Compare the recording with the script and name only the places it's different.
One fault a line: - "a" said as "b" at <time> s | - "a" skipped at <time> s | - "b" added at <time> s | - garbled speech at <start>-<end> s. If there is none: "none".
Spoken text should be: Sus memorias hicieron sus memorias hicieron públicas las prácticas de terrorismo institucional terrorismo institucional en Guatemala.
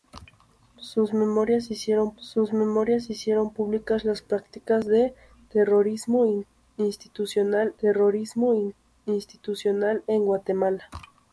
none